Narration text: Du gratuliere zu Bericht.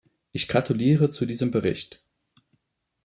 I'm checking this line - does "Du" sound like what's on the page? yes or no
no